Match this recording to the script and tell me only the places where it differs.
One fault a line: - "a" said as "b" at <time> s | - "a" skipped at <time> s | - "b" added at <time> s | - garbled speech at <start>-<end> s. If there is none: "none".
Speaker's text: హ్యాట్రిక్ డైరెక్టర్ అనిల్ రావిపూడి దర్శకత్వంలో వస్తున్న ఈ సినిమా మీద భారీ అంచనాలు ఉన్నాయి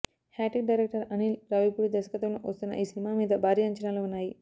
none